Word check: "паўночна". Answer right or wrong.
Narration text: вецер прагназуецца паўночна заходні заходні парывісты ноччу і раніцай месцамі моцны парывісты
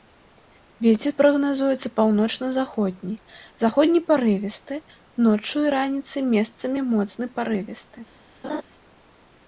right